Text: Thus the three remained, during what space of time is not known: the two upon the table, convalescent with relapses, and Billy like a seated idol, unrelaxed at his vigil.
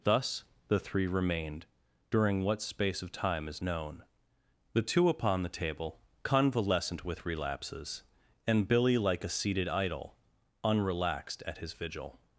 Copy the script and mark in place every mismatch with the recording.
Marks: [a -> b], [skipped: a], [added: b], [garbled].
Thus the three remained, during what space of time is [skipped: not] known: the two upon the table, convalescent with relapses, and Billy like a seated idol, unrelaxed at his vigil.